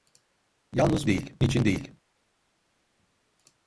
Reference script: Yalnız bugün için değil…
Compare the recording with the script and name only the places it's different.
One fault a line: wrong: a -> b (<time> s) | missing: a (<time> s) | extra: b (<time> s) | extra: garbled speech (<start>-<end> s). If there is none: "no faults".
wrong: bugün -> değil (1.1 s)